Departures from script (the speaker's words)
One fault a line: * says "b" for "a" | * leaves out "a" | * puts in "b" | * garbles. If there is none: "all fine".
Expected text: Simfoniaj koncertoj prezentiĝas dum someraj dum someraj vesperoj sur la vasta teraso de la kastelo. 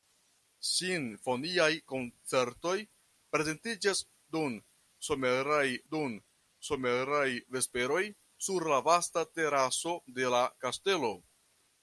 all fine